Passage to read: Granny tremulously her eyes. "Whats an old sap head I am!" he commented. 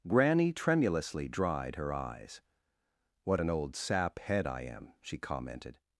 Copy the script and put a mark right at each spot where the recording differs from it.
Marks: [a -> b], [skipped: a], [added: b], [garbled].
Granny tremulously [added: dried] her eyes. ["Whats -> What] an old sap head I am!" [he -> she] commented.